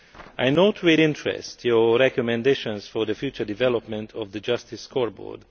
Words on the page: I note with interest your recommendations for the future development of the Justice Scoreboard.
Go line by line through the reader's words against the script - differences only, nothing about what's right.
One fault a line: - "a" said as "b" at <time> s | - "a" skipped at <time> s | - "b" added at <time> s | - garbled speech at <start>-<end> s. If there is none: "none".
none